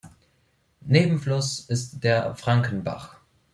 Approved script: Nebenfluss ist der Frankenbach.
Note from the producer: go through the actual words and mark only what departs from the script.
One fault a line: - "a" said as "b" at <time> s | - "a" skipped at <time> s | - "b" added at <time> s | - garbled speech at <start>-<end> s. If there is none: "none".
none